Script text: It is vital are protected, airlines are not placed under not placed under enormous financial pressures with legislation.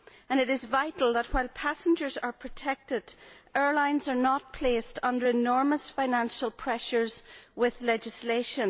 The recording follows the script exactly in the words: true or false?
false